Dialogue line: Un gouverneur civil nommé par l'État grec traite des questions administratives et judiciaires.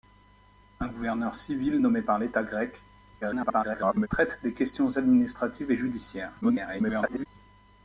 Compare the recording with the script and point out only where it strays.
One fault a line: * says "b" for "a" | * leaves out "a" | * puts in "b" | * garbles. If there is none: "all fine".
* garbles
* garbles